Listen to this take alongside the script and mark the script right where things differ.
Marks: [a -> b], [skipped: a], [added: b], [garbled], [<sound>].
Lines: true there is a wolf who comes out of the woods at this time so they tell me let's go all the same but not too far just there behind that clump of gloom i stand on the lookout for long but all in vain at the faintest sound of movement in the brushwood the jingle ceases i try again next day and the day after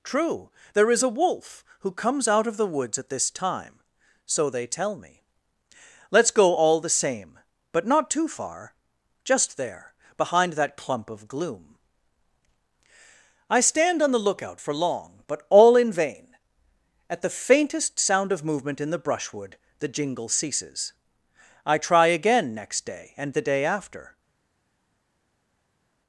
true there is a wolf who comes out of the woods at this time so they tell me let's go all the same but not too far just there behind that clump of gloom i stand on the lookout for long but all in vain at the faintest sound of movement in the brushwood the jingle ceases i try again next day and the day after